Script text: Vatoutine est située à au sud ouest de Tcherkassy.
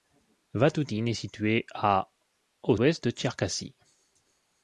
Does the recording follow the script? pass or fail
fail